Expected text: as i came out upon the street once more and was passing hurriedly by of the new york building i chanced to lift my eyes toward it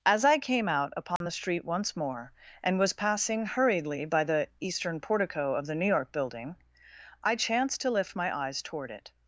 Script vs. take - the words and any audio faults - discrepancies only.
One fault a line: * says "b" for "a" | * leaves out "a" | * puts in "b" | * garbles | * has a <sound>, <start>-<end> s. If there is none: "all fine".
* has a dropout, 1.2-1.2 s
* puts in "the eastern portico"